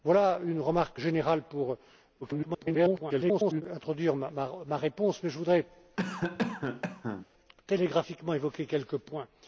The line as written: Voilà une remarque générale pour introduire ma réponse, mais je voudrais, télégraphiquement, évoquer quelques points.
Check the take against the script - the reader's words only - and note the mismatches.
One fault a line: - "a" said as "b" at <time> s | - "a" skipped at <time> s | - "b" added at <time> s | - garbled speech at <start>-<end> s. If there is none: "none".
- garbled speech at 2.2-3.6 s